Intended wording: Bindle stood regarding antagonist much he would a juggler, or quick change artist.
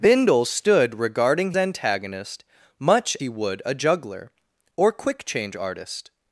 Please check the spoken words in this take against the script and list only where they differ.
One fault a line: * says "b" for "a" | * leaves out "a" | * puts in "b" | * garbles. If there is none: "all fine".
all fine